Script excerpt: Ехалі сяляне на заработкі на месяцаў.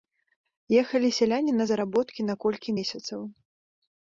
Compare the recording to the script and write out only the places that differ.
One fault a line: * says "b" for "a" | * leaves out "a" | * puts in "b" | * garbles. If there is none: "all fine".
* puts in "колькі"